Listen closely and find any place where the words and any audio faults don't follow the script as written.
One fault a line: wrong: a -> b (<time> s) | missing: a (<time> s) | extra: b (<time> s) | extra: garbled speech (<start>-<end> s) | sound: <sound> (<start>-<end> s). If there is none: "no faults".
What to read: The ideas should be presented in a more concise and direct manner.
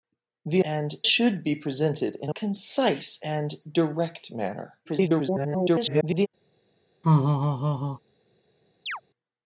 wrong: ideas -> and (0.6 s)
missing: more (2.3 s)
extra: garbled speech (4.8-6.3 s)
sound: laugh (7.0-8.0 s)
sound: chirp (8.9-9.0 s)